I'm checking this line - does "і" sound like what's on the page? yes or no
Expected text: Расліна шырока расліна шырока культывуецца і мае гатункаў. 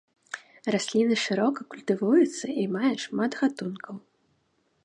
yes